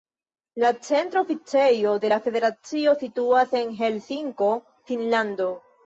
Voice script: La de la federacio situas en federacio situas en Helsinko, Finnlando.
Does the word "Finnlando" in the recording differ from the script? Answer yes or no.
no